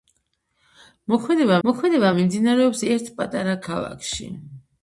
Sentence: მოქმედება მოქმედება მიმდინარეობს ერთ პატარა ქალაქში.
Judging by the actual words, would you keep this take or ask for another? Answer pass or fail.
pass